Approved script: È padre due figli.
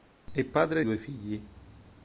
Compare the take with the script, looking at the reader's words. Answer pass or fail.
pass